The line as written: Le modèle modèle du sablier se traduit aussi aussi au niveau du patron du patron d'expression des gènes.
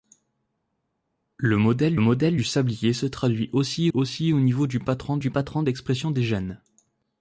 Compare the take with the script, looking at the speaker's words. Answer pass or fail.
pass